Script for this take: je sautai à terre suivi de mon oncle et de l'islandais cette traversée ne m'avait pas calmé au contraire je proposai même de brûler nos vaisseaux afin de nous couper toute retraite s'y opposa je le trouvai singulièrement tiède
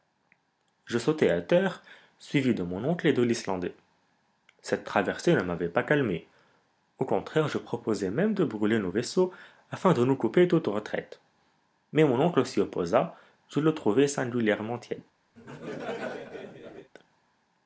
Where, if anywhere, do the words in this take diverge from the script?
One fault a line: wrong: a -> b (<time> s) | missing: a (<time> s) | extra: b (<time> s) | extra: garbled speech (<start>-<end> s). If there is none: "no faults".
extra: mais mon oncle (11.9 s)